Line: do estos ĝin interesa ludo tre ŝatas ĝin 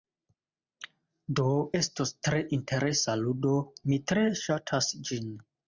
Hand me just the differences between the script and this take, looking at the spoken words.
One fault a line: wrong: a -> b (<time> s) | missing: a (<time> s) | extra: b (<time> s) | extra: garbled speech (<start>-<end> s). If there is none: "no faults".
wrong: ĝin -> tre (2.3 s)
extra: mi (3.9 s)